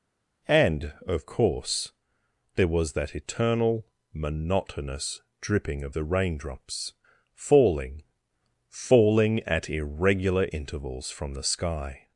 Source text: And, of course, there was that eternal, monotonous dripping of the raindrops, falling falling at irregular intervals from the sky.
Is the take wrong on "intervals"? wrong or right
right